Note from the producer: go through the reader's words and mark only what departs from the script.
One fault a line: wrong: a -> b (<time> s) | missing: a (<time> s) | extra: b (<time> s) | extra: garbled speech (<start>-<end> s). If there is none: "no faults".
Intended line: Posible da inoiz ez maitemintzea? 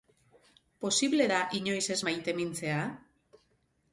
no faults